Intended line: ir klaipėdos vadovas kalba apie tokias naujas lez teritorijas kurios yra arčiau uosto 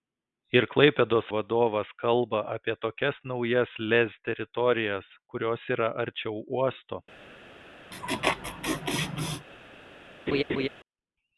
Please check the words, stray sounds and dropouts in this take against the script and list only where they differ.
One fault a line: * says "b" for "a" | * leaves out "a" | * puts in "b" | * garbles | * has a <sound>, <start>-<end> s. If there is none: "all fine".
* has a laugh, 7.9-9.5 s
* has a laugh, 10.3-10.7 s